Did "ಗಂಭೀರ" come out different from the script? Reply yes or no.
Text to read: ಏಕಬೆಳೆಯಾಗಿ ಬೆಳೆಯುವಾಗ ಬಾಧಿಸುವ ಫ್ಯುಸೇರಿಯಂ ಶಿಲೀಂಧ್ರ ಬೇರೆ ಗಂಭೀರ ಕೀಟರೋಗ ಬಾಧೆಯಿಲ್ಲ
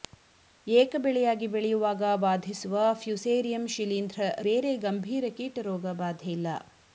no